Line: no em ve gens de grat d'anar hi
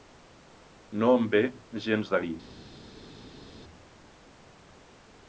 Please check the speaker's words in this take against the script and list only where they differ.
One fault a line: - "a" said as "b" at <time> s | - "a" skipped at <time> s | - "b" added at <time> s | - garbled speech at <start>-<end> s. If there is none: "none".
- "grat d'anar" skipped at 2.2 s